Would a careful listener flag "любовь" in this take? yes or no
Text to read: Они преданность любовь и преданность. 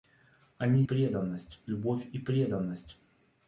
no